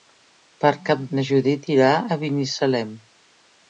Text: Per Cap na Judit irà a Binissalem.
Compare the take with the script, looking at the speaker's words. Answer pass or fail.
pass